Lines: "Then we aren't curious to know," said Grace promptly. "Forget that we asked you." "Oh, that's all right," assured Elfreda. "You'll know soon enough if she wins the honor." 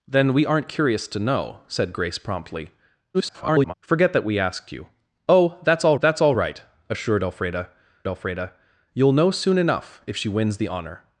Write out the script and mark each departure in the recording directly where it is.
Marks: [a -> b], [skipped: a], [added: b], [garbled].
"Then we aren't curious to know," said Grace promptly. [garbled] "Forget that we asked you." "Oh, that's all [added: that's all] right," assured Elfreda. [added: Elfreda] "You'll know soon enough if she wins the honor."